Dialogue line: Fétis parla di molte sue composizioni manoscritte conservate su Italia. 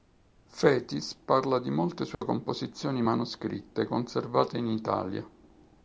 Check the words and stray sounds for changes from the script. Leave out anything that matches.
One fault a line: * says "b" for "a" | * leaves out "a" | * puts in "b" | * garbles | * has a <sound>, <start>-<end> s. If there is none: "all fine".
* has a dropout, 2.1-2.2 s
* says "in" for "su"